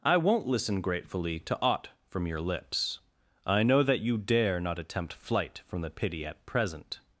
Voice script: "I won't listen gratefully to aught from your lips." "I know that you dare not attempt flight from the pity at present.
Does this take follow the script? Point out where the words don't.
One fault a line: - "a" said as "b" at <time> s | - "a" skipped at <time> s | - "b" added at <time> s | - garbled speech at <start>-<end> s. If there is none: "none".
none